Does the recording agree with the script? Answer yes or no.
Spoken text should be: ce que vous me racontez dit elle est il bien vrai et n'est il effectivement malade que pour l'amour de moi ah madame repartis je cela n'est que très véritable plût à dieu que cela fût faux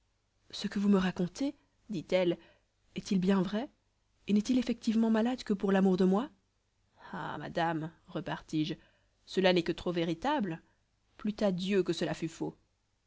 no